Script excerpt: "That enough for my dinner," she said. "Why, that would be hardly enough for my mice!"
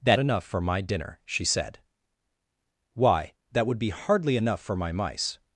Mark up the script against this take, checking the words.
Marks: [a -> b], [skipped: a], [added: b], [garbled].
"That enough for my dinner," she said. "Why, that would be hardly enough for my mice!"